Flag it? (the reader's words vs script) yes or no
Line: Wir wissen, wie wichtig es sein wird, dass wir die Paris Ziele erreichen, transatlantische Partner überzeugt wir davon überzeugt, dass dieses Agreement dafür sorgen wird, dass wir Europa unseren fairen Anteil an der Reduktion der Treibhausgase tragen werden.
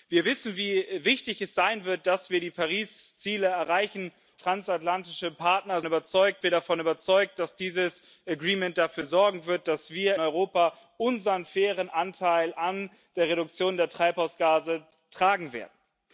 no